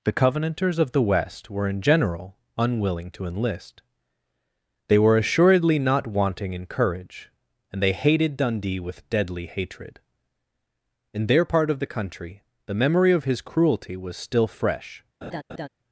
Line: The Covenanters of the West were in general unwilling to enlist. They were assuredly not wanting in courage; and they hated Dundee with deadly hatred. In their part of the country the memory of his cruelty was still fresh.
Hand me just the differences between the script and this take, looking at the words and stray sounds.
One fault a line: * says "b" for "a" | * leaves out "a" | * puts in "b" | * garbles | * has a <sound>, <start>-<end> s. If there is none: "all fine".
* has a laugh, 15.2-15.7 s